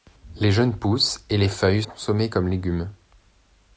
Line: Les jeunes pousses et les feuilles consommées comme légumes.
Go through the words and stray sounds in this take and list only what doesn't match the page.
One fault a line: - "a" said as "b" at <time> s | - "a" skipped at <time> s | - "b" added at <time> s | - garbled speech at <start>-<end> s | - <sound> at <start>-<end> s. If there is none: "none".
none